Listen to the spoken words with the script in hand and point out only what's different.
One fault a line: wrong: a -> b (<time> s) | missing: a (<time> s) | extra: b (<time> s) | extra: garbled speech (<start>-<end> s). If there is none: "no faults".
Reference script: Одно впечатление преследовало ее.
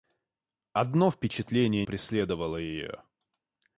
no faults